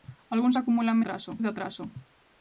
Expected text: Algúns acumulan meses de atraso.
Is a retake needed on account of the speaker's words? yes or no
yes